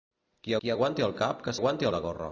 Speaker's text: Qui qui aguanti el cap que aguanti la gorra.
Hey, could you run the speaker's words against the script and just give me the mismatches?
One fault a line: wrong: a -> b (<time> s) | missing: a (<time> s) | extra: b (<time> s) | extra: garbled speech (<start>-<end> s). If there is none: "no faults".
no faults